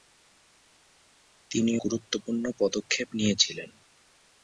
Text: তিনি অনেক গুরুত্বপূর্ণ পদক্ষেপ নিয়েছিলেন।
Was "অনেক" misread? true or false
true